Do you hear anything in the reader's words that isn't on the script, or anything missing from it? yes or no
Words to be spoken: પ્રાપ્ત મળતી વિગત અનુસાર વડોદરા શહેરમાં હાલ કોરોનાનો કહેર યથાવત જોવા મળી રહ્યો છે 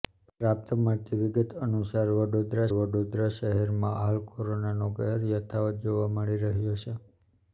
yes